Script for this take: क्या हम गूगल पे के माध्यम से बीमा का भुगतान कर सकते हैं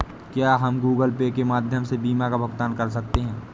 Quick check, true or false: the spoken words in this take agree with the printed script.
true